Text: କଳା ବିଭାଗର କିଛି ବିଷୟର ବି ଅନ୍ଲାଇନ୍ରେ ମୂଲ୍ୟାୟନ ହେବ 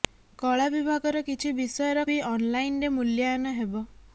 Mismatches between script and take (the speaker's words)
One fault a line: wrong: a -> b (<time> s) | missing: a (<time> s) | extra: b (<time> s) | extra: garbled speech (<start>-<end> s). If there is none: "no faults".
no faults